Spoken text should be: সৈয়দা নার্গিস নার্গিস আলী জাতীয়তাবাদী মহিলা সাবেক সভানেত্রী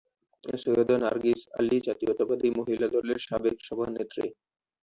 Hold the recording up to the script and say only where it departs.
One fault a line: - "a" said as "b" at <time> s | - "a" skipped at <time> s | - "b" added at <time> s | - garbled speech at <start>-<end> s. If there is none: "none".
- "নার্গিস" skipped at 1.4 s
- "দলের" added at 3.0 s